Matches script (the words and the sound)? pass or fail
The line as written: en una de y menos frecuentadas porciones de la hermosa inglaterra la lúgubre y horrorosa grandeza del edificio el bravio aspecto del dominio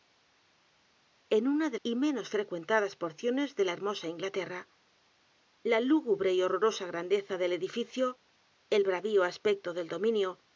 pass